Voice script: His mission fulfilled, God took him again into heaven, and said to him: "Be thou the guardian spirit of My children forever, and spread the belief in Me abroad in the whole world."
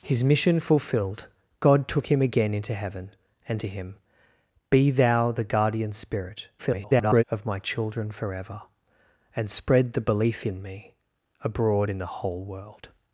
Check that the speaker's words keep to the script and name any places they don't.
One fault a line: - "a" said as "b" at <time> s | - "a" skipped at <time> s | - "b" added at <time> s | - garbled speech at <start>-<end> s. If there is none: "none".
- "said" skipped at 3.6 s
- garbled speech at 6.6-7.2 s